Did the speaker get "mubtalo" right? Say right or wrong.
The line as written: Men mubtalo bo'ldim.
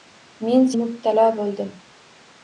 right